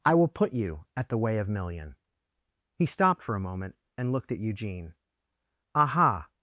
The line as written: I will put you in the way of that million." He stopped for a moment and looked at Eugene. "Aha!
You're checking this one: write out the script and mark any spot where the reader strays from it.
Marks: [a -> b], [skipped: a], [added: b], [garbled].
I will put you [in -> at] the way of [skipped: that] million." He stopped for a moment and looked at Eugene. "Aha!